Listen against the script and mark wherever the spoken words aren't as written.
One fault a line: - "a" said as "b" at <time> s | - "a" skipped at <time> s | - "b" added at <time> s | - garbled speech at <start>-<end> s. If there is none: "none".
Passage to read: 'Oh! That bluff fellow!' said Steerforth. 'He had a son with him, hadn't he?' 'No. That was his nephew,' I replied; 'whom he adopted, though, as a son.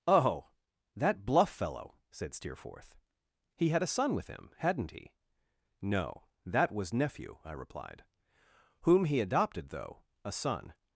- "his" skipped at 6.9 s
- "as" skipped at 10.0 s